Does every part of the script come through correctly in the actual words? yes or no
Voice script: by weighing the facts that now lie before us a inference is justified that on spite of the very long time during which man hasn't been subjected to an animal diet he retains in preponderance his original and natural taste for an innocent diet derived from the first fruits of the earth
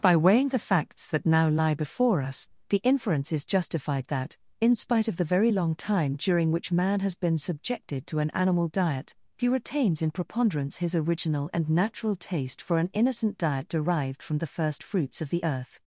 no